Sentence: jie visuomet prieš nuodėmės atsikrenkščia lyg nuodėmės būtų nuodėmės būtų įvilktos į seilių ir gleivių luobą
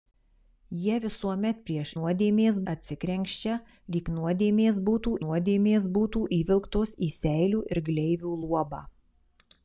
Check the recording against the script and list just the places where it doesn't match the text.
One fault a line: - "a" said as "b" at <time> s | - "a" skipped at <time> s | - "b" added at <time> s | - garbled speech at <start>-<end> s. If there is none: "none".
none